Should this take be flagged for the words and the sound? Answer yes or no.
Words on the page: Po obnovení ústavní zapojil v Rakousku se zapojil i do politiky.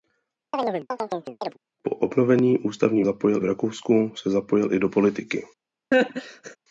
yes